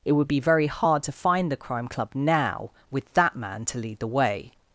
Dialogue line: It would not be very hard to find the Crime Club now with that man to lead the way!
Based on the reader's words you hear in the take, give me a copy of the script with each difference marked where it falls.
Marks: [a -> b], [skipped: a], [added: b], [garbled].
It would [skipped: not] be very hard to find the Crime Club now with that man to lead the way!